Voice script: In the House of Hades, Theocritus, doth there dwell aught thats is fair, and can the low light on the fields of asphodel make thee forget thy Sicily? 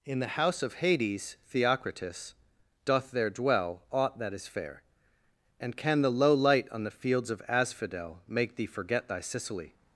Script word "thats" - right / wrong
wrong